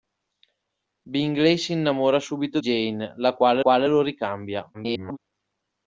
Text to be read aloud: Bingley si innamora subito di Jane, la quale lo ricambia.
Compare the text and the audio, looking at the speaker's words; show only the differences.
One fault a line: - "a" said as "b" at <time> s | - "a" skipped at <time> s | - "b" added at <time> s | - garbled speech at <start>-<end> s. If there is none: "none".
- "di" skipped at 2.6 s
- "quale" added at 3.6 s
- garbled speech at 4.7-5.2 s